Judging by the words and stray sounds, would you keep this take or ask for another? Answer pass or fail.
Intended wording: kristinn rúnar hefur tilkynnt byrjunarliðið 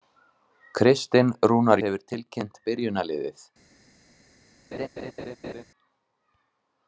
fail